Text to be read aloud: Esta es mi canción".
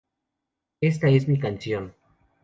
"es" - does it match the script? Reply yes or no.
yes